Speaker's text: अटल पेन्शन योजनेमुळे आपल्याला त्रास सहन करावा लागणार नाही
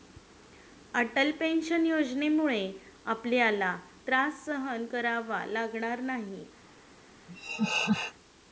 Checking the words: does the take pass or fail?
pass